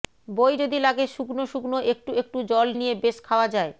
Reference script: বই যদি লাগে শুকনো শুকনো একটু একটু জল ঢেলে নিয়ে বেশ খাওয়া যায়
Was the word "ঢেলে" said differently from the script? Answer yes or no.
yes